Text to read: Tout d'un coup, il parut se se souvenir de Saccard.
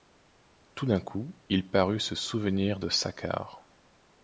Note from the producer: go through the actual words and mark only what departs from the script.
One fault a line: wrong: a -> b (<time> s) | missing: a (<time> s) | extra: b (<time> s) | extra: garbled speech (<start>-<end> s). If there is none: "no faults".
missing: se (2.1 s)